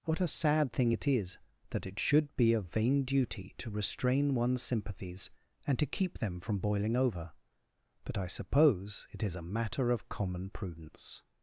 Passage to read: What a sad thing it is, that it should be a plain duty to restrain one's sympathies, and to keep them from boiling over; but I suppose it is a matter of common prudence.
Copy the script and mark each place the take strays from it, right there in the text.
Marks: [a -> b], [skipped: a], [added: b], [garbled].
What a sad thing it is, that it should be a [plain -> vain] duty to restrain one's sympathies, and to keep them from boiling over; but I suppose it is a matter of common prudence.